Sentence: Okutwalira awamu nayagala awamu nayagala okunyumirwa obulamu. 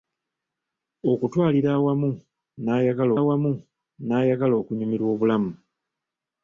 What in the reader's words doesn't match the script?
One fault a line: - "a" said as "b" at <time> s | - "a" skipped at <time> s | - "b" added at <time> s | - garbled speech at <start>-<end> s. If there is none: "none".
none